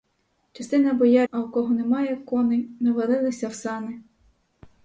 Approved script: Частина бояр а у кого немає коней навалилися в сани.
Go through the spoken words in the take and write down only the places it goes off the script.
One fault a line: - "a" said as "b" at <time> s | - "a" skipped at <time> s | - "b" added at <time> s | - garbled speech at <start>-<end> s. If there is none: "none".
none